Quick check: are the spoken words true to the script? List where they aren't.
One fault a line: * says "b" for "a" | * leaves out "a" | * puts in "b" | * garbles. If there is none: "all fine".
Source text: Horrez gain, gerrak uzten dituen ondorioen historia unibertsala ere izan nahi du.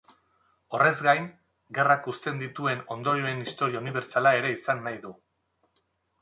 all fine